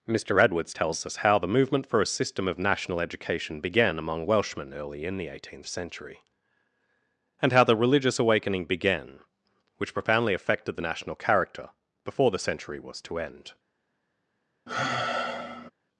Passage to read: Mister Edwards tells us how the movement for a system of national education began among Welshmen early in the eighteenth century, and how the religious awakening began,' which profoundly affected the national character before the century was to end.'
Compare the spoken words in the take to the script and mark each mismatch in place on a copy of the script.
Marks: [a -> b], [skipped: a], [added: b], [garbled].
Mister Edwards tells us how the movement for a system of national education began among Welshmen early in the eighteenth century, and how the religious awakening began,' which profoundly affected the national character before the century was to end.'